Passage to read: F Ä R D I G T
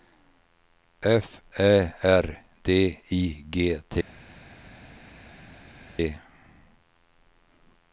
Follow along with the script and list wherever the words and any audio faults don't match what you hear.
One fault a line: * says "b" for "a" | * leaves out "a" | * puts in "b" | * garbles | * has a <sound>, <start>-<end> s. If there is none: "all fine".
all fine